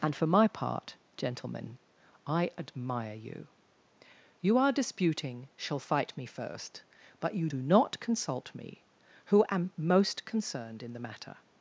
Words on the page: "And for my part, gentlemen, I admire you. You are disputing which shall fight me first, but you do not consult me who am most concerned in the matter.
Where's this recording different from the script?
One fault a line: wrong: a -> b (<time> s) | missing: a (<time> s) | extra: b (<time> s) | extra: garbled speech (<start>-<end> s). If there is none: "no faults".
missing: which (5.5 s)